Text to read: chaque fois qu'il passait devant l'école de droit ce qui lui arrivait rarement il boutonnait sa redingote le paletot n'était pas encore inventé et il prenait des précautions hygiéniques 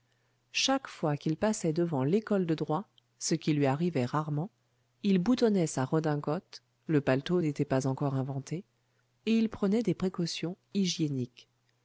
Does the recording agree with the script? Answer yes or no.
yes